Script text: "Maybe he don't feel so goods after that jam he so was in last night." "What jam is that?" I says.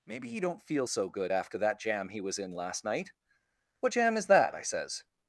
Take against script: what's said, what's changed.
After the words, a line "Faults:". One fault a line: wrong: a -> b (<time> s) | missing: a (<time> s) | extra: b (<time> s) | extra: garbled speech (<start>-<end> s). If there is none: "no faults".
"Maybe he don't feel so good after that jam he was in last night." "What jam is that?" I says.
Faults:
wrong: goods -> good (1.1 s)
missing: so (2.2 s)